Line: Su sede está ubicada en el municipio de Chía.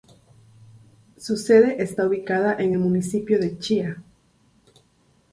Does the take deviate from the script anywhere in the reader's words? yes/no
no